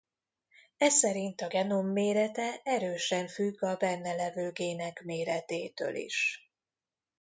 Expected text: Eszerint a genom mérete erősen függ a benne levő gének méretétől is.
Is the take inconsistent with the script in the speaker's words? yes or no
no